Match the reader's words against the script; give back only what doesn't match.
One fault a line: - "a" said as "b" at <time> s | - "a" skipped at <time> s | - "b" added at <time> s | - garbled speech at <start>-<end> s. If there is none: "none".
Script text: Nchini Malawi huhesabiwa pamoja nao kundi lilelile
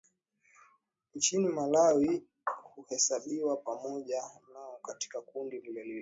- "katika" added at 4.8 s